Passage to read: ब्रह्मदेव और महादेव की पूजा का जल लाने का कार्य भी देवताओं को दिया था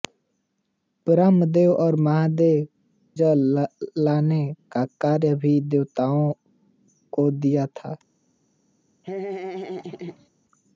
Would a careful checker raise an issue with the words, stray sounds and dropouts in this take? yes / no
yes